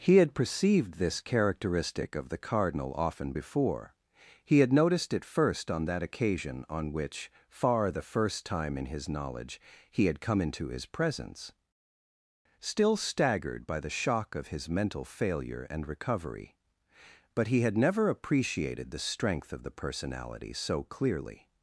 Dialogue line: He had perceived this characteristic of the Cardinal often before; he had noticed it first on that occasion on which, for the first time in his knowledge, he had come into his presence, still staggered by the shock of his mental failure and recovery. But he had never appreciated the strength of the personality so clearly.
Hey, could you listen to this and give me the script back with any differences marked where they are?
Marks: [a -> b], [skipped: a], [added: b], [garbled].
He had perceived this characteristic of the Cardinal often before; he had noticed it first on that occasion on which, [for -> far] the first time in his knowledge, he had come into his presence, still staggered by the shock of his mental failure and recovery. But he had never appreciated the strength of the personality so clearly.